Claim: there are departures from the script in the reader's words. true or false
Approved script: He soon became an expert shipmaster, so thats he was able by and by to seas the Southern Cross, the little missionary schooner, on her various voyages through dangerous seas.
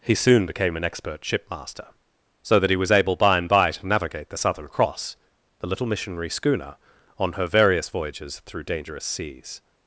true